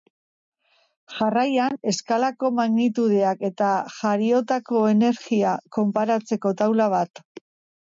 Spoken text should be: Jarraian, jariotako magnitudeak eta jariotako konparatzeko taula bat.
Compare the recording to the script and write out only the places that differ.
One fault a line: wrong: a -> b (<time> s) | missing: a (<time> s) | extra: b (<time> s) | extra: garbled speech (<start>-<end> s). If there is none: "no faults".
wrong: jariotako -> eskalako (1.9 s)
extra: energia (5.0 s)